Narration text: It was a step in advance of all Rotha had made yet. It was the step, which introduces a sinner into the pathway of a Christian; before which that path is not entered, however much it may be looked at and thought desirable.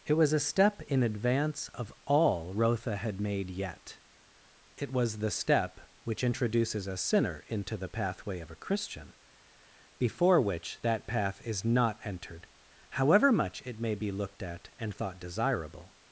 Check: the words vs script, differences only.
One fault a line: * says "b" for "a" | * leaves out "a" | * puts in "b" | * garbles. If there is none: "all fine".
all fine